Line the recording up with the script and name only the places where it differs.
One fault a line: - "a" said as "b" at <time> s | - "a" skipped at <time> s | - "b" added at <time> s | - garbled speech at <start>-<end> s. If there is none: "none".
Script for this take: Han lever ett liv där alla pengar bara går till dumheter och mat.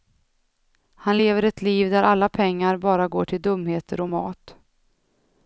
none